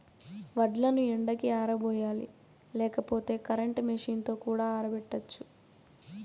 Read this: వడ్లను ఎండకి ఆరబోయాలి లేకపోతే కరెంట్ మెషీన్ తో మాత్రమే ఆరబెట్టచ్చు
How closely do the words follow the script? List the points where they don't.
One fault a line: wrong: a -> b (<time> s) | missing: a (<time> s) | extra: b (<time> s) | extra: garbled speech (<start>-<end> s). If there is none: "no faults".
wrong: మాత్రమే -> కూడా (4.4 s)